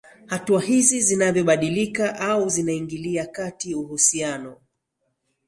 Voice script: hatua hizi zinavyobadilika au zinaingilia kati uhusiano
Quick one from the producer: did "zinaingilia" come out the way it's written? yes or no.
yes